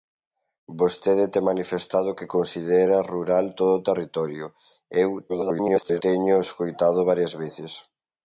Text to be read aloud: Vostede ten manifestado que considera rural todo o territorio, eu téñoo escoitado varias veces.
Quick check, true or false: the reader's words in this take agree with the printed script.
false